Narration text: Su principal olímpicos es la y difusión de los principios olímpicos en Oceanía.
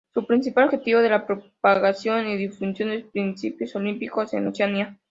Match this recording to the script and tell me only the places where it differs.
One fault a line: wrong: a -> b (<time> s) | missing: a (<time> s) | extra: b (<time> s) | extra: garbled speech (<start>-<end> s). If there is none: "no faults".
wrong: olímpicos -> objetivo (0.7 s)
extra: propagación (1.3 s)